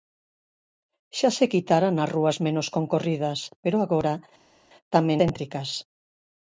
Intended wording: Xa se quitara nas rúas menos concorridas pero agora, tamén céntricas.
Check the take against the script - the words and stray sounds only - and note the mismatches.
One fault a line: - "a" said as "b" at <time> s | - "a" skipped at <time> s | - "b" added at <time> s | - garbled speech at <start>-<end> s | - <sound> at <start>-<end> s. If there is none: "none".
none